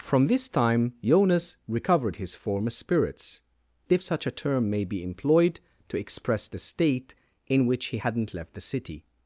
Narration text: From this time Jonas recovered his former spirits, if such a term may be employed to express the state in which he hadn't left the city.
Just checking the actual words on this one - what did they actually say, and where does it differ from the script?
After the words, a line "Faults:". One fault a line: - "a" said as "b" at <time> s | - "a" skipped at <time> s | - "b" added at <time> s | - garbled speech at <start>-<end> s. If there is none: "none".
From this time Jonas recovered his former spirits, if such a term may be employed to express the state in which he hadn't left the city.
Faults:
none